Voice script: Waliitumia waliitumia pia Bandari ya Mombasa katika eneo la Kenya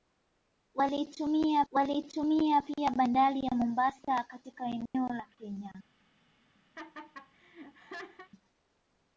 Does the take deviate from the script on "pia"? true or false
false